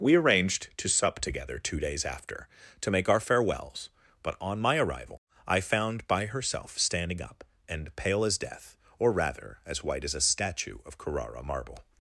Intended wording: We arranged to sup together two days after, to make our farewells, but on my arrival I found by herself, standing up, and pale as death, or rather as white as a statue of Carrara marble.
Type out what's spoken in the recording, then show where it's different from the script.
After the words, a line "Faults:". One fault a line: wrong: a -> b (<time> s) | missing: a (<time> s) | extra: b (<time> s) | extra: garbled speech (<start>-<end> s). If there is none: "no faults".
We arranged to sup together two days after, to make our farewells, but on my arrival I found by herself, standing up, and pale as death, or rather as white as a statue of Carrara marble.
Faults:
no faults